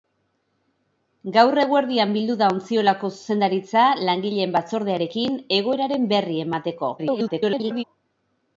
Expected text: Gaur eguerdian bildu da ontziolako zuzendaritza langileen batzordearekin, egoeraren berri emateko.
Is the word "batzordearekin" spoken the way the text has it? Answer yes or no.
yes